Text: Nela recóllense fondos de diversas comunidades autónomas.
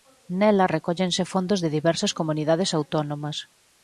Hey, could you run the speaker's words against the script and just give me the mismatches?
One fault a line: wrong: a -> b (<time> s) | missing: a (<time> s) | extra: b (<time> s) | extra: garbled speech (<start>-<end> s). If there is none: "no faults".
no faults